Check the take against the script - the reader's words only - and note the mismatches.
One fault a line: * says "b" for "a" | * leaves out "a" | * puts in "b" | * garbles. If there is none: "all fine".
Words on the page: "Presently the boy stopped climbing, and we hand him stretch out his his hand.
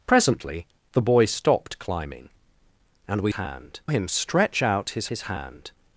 all fine